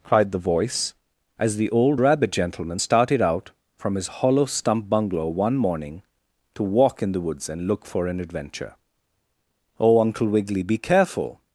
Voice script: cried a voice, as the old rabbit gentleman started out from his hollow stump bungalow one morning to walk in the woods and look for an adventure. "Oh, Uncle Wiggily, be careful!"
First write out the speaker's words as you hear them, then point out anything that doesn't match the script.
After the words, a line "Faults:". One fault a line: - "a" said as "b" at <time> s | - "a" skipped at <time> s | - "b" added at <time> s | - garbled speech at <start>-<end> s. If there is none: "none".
cried the voice, as the old rabbit gentleman started out from his hollow stump bungalow one morning to walk in the woods and look for an adventure. "Oh, Uncle Wiggily, be careful!"
Faults:
- "a" said as "the" at 0.3 s